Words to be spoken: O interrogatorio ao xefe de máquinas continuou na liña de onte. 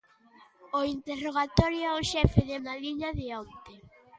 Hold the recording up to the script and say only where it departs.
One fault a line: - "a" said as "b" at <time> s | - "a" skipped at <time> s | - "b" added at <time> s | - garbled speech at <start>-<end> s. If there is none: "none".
- "máquinas continuou" skipped at 2.6 s